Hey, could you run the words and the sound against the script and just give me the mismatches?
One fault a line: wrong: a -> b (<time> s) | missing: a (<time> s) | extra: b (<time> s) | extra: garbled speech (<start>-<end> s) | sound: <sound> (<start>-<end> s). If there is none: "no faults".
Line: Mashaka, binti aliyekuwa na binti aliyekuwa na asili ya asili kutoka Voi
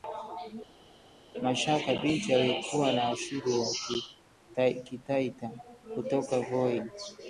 missing: binti aliyekuwa na (3.1 s)
wrong: asili -> kitaita (4.7 s)